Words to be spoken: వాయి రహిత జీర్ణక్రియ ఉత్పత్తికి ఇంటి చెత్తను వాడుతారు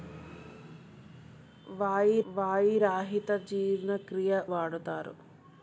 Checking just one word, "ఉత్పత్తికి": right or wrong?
wrong